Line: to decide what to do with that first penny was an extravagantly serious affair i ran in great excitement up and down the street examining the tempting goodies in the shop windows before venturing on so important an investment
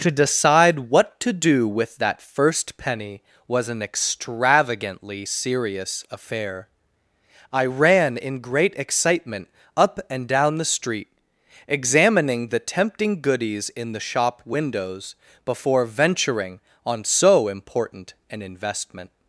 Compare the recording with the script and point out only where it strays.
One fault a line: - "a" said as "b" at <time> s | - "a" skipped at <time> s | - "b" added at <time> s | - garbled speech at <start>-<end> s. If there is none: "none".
none